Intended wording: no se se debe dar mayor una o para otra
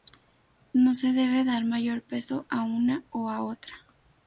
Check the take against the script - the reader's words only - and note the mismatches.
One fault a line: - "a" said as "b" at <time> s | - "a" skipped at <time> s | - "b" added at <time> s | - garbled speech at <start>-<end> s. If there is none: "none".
- "se" skipped at 1.1 s
- "peso a" added at 2.0 s
- "para" said as "a" at 3.3 s